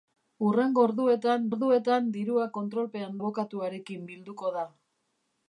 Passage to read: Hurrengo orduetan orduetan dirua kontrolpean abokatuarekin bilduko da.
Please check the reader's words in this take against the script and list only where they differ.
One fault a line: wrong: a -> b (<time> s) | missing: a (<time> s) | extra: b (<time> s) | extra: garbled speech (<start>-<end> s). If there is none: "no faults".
no faults